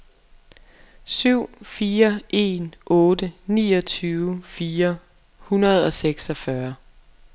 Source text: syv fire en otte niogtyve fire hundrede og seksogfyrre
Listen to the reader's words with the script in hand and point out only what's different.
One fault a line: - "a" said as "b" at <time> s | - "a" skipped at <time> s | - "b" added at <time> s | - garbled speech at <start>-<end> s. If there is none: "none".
none